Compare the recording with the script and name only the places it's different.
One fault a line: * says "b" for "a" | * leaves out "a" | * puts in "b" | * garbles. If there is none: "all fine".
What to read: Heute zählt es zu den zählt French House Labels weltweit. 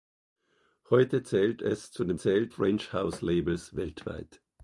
all fine